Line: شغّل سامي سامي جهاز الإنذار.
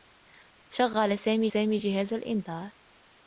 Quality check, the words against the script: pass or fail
pass